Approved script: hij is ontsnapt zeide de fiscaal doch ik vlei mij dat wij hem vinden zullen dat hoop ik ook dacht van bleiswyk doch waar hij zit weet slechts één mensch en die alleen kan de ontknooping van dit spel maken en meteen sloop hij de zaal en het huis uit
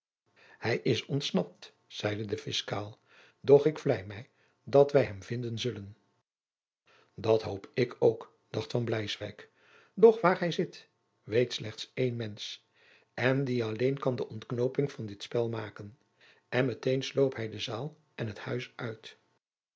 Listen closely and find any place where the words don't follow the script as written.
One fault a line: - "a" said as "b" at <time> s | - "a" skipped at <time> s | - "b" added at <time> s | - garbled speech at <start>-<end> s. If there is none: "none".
none